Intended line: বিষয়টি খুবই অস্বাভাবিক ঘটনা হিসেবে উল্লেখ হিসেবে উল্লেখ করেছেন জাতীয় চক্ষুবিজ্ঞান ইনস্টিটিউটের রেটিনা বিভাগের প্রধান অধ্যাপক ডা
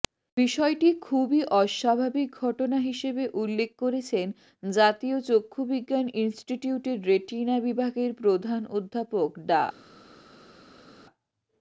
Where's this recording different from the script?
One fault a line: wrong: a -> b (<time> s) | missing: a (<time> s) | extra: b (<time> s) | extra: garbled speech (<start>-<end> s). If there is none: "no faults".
missing: হিসেবে উল্লেখ (3.7 s)